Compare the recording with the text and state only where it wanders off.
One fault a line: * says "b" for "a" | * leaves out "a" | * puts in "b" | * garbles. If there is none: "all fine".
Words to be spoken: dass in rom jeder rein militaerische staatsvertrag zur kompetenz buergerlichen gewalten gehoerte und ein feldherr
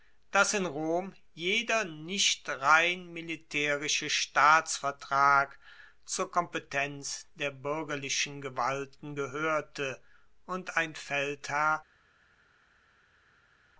* puts in "nicht"
* puts in "der"